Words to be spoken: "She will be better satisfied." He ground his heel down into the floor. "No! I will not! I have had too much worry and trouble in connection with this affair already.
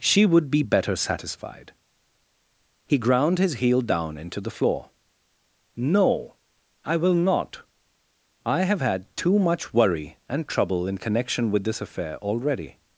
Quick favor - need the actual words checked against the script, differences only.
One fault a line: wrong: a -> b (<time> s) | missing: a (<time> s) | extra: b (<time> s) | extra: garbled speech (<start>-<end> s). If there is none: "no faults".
wrong: will -> would (0.2 s)